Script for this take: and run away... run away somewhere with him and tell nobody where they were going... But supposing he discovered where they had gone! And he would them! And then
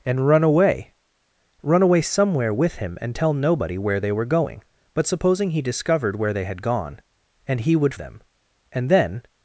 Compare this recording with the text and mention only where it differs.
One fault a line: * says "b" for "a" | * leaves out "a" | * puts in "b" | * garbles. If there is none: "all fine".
all fine